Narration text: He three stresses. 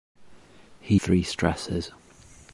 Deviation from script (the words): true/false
false